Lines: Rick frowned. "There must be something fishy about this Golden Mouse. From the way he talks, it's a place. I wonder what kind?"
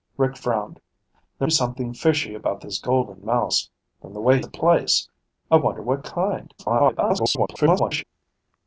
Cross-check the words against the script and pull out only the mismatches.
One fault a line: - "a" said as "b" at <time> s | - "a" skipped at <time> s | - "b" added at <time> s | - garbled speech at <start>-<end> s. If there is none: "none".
- "must" skipped at 1.5 s
- "he talks it's" skipped at 4.4 s
- garbled speech at 6.6-8.0 s